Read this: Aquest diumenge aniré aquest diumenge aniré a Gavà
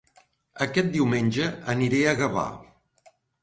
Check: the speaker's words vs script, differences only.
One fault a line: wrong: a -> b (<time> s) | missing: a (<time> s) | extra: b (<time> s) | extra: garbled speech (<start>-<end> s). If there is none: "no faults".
missing: aquest diumenge aniré (2.0 s)